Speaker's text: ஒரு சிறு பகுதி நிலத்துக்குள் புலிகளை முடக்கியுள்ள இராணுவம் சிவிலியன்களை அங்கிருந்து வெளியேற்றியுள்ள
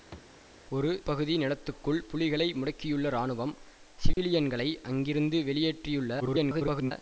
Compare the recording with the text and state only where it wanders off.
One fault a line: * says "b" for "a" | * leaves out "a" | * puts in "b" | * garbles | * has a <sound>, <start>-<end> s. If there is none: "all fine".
* has a thud, 0.1-0.3 s
* leaves out "சிறு"
* has a dropout, 4.1-4.2 s
* garbles